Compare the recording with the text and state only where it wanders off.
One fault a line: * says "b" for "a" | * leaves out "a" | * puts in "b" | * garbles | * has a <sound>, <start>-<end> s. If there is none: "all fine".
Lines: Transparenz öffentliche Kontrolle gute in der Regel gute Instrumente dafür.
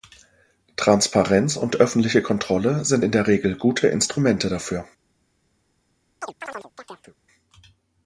* puts in "und"
* says "sind" for "gute"
* has a chirp, 6.2-7.2 s